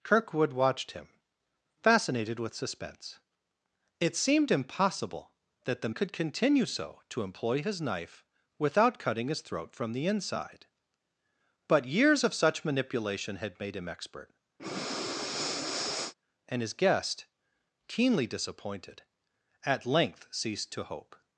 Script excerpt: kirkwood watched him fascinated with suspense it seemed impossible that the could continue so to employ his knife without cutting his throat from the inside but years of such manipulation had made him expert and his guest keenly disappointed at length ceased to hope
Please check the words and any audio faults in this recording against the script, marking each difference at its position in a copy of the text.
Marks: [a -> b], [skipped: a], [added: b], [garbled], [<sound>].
kirkwood watched him fascinated with suspense it seemed impossible that the could continue so to employ his knife without cutting his throat from the inside but years of such manipulation had made him expert [breath] and his guest keenly disappointed at length ceased to hope